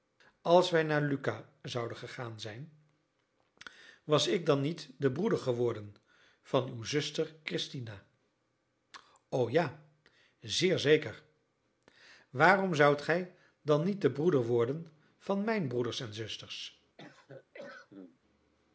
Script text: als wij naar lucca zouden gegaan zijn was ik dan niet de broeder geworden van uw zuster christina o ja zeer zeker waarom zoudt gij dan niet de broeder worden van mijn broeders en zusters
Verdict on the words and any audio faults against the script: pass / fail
fail